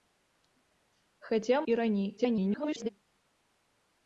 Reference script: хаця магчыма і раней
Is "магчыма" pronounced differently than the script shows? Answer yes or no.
yes